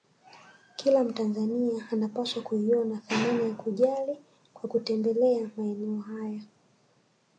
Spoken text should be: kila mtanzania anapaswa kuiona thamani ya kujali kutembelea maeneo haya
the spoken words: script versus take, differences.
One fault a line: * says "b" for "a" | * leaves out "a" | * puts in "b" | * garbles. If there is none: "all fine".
* puts in "kwa"